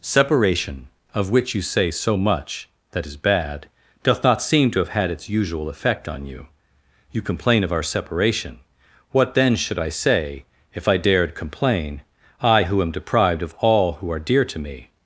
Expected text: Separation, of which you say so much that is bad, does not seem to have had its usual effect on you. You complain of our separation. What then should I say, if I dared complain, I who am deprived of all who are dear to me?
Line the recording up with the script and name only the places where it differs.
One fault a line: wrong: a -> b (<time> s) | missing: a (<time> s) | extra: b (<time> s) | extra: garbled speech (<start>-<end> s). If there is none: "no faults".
wrong: does -> doth (4.0 s)